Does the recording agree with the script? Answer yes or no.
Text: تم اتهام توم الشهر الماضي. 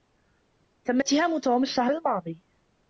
yes